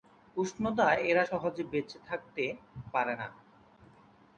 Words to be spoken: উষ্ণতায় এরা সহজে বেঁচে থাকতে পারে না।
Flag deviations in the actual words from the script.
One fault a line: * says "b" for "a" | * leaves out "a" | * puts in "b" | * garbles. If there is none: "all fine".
all fine